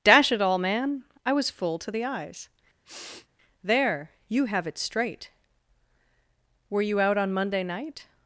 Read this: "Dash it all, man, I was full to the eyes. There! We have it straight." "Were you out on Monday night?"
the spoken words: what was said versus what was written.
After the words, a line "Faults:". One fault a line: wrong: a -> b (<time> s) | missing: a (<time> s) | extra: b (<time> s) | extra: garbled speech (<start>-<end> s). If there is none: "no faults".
"Dash it all, man, I was full to the eyes. There! You have it straight." "Were you out on Monday night?"
Faults:
wrong: We -> You (4.3 s)